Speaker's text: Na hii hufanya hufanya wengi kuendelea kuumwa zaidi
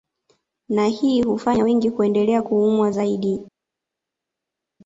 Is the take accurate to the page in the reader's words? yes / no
no